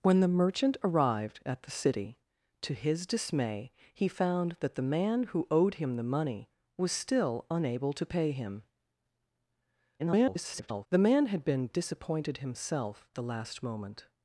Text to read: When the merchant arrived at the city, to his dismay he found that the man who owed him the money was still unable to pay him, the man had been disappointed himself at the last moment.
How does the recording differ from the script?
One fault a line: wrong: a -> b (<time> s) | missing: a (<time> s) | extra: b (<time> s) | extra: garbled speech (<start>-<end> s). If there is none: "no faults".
extra: garbled speech (10.0-10.9 s)
missing: at (13.1 s)